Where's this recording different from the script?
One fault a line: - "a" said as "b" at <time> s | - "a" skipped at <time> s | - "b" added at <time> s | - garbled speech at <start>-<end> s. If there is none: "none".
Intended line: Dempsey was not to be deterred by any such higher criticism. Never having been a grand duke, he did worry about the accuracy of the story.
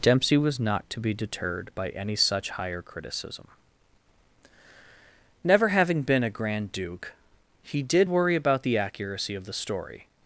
none